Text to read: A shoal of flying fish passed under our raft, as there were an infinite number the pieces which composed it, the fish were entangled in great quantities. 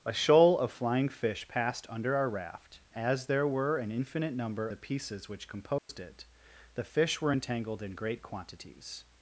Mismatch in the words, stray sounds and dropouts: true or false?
true